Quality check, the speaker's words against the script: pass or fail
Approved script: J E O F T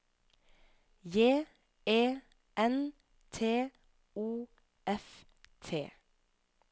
fail